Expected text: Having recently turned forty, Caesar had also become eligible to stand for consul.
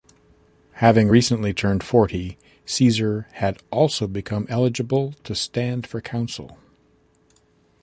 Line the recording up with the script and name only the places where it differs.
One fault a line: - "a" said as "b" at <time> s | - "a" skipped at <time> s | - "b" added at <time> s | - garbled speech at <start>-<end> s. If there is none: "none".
none